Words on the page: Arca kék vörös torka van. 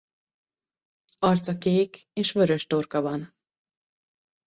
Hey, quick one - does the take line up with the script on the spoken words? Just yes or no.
no